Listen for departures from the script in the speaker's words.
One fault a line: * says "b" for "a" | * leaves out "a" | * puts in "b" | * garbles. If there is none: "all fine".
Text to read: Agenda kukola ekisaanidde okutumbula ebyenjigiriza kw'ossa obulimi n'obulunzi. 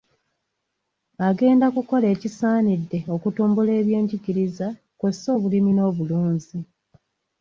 all fine